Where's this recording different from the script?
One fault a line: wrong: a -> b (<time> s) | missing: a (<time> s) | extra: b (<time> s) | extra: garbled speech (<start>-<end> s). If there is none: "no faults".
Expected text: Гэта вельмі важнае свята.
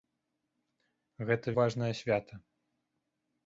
missing: вельмі (1.5 s)